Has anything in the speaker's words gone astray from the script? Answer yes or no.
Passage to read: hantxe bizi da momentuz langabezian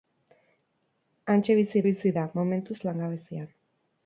yes